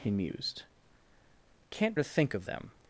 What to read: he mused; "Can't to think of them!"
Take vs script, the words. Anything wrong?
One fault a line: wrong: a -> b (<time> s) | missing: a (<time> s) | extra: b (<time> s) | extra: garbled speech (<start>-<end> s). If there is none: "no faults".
no faults